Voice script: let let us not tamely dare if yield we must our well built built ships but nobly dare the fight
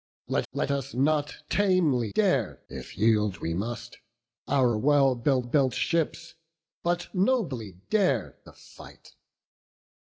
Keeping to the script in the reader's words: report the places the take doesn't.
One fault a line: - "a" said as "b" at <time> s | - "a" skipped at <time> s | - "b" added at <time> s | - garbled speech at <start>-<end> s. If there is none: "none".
none